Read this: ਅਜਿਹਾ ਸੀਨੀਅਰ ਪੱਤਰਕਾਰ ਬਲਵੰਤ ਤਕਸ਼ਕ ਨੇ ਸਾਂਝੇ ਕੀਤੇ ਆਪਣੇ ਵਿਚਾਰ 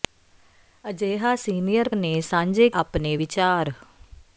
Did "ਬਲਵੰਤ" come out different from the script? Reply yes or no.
yes